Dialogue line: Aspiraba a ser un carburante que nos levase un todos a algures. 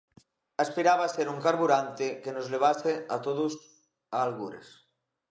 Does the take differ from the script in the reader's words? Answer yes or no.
yes